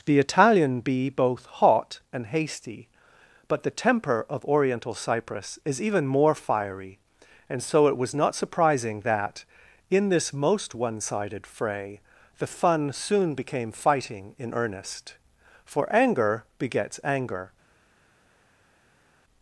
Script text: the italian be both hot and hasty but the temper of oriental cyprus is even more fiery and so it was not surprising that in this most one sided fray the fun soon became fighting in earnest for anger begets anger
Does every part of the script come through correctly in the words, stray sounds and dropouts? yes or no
yes